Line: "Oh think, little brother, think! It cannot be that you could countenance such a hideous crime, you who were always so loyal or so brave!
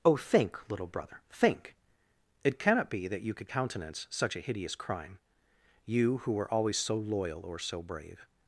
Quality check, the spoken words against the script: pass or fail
pass